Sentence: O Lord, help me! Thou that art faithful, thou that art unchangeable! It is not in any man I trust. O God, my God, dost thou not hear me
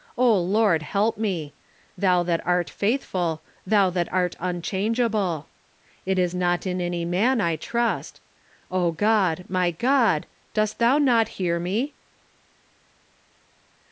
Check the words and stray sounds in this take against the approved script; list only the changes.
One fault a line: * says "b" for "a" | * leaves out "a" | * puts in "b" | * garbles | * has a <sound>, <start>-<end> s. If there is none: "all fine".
all fine